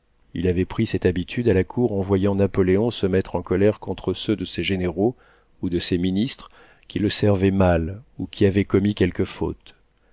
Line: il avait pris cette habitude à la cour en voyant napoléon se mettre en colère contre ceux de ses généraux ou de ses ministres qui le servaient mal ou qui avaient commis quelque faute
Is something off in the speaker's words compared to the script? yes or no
no